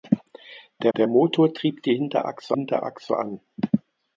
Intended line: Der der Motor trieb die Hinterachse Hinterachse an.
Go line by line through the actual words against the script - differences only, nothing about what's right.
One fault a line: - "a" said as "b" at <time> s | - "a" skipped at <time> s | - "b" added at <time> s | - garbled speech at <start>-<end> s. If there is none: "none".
none